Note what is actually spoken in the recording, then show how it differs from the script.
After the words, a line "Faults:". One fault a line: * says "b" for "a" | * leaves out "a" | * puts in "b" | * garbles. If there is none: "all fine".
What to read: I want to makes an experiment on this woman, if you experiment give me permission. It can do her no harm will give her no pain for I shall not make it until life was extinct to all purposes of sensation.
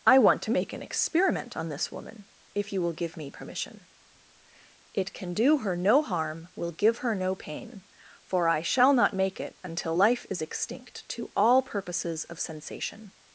I want to make an experiment on this woman, if you will give me permission. It can do her no harm will give her no pain for I shall not make it until life is extinct to all purposes of sensation.
Faults:
* says "make" for "makes"
* says "will" for "experiment"
* says "is" for "was"